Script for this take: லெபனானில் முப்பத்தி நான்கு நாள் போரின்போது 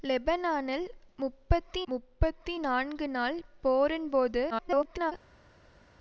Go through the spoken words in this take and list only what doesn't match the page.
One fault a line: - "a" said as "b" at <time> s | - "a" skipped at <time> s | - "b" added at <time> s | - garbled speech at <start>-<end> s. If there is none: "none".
- "முப்பத்தி" added at 1.9 s
- garbled speech at 4.5-5.1 s